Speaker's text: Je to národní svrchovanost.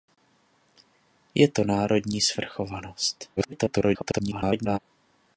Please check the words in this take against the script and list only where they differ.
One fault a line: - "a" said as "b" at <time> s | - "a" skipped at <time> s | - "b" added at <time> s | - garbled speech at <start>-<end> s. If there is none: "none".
- garbled speech at 3.4-4.8 s